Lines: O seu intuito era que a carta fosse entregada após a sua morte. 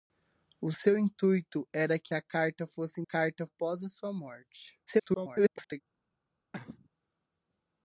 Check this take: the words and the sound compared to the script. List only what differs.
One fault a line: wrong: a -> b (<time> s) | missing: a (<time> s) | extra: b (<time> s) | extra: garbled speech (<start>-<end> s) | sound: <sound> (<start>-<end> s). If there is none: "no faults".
wrong: entregada -> carta (3.0 s)
extra: garbled speech (4.9-5.8 s)
sound: cough (6.5-6.9 s)